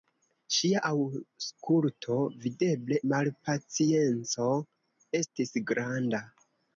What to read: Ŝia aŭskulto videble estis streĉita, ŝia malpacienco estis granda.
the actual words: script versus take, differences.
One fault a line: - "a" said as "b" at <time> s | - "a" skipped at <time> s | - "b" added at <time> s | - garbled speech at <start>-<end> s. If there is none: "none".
- "estis streĉita ŝia" skipped at 3.0 s